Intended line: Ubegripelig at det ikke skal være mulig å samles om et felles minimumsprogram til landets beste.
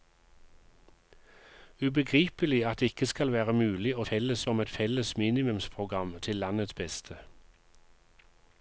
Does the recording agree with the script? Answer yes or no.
no